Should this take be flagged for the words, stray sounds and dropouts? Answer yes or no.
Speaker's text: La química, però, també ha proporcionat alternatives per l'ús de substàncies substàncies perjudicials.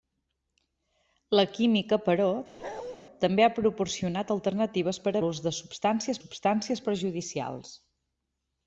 yes